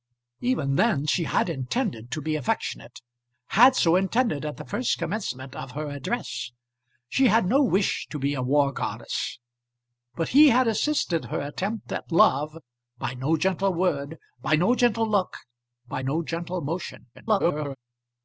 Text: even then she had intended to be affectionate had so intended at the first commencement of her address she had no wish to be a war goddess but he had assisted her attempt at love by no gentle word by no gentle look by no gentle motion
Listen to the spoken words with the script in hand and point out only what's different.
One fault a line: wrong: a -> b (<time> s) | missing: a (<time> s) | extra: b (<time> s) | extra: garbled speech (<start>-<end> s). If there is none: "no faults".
extra: garbled speech (17.1-17.8 s)